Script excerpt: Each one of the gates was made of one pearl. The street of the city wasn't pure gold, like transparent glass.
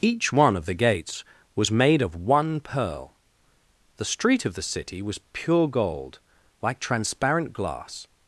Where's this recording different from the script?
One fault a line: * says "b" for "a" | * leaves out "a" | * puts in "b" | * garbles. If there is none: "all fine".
* says "was" for "wasn't"